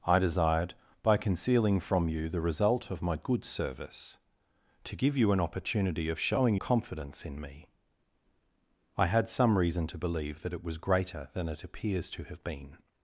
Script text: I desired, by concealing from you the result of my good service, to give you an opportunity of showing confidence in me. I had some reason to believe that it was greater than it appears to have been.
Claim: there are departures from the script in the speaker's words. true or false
false